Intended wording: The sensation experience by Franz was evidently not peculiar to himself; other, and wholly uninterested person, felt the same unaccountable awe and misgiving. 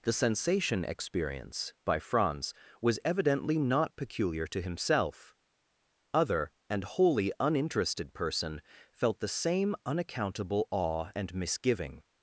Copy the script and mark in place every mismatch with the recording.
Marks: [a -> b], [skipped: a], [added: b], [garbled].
The sensation experience by Franz was evidently not peculiar to himself; other, and wholly uninterested person, felt the same unaccountable awe and misgiving.